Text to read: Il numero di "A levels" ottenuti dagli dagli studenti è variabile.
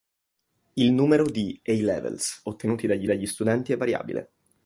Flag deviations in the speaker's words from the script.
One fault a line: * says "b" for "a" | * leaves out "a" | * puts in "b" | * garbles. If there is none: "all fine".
all fine